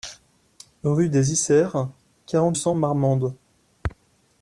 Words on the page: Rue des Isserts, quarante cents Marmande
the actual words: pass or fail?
pass